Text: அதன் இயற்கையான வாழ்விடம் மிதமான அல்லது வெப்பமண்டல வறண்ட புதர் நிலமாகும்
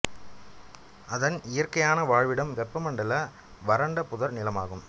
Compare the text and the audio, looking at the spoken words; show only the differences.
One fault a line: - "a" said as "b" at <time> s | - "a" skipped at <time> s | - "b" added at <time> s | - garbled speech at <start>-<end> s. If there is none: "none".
- "மிதமான அல்லது" skipped at 2.5 s